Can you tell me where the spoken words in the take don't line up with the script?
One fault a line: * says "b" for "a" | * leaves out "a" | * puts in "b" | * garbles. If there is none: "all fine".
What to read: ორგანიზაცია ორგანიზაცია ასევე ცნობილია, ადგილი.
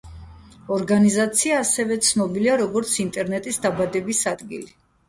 * leaves out "ორგანიზაცია"
* puts in "როგორც ინტერნეტის დაბადების"